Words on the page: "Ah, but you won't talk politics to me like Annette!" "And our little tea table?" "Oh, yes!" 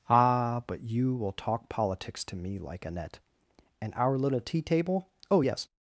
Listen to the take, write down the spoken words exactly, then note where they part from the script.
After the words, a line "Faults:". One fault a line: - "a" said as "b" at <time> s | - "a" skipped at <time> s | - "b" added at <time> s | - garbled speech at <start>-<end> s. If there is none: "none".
"Ah, but you will talk politics to me like Annette!" "And our little tea table?" "Oh, yes!"
Faults:
- "won't" said as "will" at 1.1 s